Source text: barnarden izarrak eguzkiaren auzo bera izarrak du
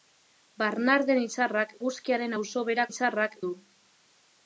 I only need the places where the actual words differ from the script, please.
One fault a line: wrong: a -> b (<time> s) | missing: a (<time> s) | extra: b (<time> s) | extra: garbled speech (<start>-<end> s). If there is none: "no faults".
no faults